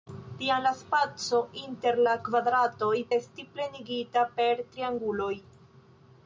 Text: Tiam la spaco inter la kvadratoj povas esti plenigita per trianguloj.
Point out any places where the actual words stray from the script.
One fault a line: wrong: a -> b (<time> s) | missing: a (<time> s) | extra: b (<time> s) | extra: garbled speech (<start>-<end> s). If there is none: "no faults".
missing: povas (2.9 s)